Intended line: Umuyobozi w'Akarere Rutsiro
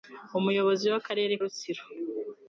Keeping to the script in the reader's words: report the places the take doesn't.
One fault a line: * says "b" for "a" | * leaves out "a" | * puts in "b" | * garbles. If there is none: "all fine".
all fine